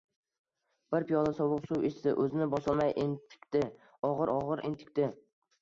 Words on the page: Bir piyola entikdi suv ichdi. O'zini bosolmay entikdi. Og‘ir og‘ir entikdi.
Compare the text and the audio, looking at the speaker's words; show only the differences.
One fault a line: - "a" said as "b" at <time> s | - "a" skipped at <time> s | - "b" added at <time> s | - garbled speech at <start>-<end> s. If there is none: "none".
- "entikdi" said as "sovuq" at 1.4 s